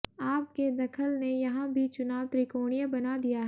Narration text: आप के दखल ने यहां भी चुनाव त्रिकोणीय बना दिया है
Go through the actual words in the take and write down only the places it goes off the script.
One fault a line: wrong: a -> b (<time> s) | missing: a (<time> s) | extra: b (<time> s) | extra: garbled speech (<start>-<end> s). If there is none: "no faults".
no faults